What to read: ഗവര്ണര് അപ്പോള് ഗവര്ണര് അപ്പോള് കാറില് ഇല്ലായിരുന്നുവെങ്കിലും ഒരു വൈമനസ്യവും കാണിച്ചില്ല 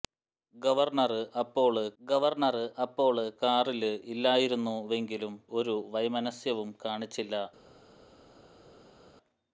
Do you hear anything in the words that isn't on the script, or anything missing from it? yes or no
no